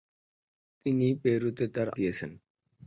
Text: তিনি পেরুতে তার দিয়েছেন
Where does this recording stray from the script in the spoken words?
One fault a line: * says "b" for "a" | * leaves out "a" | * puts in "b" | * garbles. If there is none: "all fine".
all fine